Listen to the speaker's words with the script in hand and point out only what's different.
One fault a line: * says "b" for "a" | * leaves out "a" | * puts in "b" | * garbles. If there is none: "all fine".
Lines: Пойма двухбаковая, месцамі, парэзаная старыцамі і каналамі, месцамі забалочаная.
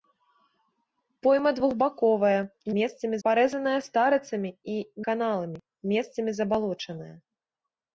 all fine